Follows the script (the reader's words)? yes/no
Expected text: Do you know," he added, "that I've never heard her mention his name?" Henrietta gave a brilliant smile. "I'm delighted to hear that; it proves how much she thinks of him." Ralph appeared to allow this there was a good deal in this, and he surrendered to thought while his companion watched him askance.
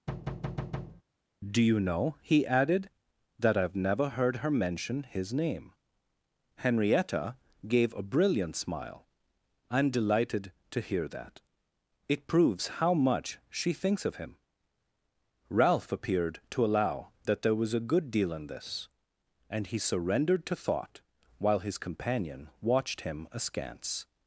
no